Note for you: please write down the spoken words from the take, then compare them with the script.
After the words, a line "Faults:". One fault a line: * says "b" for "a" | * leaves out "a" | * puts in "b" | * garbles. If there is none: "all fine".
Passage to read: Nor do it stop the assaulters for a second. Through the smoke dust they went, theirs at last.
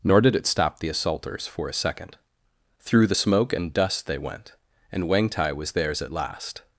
Nor did it stop the assaulters for a second. Through the smoke and dust they went, and Wangtai was theirs at last.
Faults:
* says "did" for "do"
* puts in "and"
* puts in "and Wangtai was"